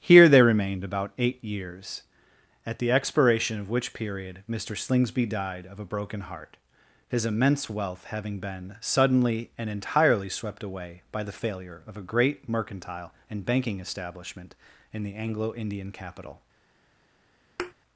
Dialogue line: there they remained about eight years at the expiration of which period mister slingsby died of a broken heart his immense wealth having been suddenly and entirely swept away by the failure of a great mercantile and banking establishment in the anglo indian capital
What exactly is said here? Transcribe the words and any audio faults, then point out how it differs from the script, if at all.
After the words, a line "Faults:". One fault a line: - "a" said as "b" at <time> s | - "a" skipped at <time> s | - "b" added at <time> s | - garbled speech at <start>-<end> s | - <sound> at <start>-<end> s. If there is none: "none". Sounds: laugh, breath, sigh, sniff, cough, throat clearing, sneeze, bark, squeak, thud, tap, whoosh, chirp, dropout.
here they remained about eight years at the expiration of which period mister slingsby died of a broken heart his immense wealth having been suddenly and entirely swept away by the failure of a great mercantile and banking establishment in the anglo indian capital
Faults:
- "there" said as "here" at 0.0 s
- thud at 17.6-17.7 s